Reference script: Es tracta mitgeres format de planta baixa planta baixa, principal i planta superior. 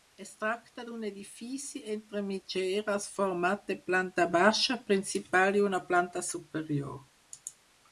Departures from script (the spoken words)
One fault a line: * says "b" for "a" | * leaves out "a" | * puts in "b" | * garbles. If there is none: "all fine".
* puts in "d'un edifici entre"
* leaves out "planta baixa"
* puts in "una"